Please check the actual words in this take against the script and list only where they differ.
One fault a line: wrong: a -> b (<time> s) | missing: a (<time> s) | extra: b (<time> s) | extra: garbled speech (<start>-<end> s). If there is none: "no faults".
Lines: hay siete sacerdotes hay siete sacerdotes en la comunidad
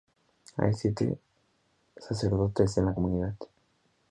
missing: hay siete sacerdotes (2.8 s)